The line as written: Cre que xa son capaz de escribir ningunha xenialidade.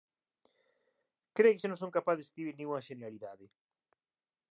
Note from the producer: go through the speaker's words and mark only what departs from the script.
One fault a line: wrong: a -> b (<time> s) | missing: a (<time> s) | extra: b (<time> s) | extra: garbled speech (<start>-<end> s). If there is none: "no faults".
extra: non (1.7 s)